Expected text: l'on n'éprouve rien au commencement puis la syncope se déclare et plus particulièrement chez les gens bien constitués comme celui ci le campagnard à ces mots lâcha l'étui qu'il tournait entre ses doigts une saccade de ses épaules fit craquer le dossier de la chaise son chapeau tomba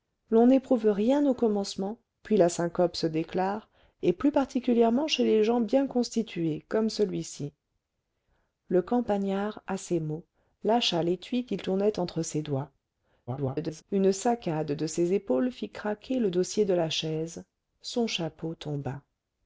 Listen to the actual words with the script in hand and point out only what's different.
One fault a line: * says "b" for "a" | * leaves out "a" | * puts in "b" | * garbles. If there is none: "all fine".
* garbles